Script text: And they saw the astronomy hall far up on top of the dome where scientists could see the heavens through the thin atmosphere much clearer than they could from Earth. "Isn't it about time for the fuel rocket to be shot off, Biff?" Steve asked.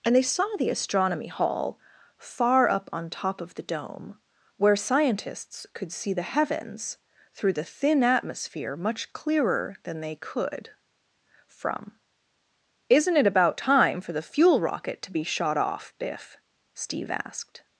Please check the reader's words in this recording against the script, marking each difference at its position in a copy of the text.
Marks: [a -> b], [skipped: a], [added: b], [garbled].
And they saw the astronomy hall far up on top of the dome where scientists could see the heavens through the thin atmosphere much clearer than they could from [skipped: Earth.] "Isn't it about time for the fuel rocket to be shot off, Biff?" Steve asked.